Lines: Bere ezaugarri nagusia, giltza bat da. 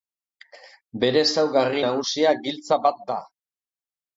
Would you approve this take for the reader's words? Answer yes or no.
yes